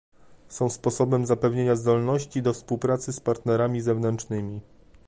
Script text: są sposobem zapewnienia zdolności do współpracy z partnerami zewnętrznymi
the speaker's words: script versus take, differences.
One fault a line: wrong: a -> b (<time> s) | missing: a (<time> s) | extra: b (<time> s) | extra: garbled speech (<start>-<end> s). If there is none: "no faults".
no faults